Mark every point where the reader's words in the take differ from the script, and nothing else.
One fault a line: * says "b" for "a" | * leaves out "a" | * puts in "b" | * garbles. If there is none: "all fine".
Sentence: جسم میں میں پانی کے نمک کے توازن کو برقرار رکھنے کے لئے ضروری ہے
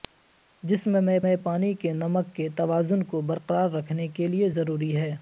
all fine